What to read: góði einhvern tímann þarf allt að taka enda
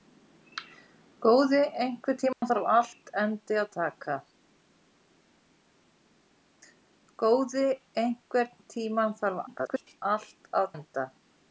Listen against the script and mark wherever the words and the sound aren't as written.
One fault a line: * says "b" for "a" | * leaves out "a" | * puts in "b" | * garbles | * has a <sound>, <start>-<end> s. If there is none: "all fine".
* has a dropout, 2.3-2.4 s
* garbles
* leaves out "taka"